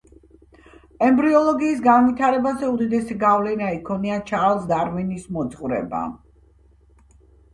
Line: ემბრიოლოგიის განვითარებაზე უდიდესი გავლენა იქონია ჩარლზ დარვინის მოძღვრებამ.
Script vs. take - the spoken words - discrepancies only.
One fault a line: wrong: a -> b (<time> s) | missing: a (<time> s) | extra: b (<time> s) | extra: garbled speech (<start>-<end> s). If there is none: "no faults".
no faults